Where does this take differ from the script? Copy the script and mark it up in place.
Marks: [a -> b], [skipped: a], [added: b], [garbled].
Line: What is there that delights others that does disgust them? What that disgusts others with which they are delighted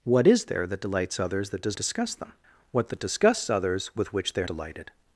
What is there that delights others that does disgust them? What that disgusts others with which they are delighted